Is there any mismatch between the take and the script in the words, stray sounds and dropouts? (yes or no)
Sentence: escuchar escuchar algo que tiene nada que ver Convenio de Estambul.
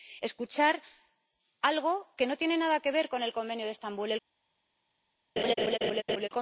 yes